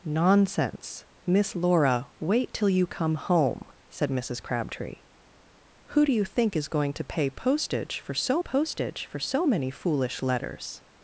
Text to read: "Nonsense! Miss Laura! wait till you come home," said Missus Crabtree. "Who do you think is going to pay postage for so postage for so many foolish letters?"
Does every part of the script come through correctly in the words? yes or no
yes